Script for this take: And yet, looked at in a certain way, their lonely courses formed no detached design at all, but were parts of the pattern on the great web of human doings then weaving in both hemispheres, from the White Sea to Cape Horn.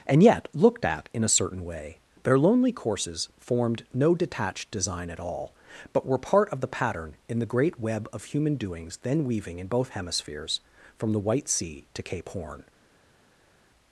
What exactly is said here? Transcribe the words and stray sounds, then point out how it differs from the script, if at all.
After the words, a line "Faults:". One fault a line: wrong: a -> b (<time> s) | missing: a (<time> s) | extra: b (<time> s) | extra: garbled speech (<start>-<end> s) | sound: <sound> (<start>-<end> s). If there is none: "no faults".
And yet, looked at in a certain way, their lonely courses formed no detached design at all, but were part of the pattern in the great web of human doings then weaving in both hemispheres, from the White Sea to Cape Horn.
Faults:
wrong: parts -> part (6.2 s)
wrong: on -> in (7.3 s)